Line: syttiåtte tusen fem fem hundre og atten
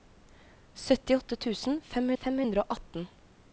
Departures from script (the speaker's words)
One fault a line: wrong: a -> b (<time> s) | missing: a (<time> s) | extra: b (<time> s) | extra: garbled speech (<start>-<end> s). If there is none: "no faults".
no faults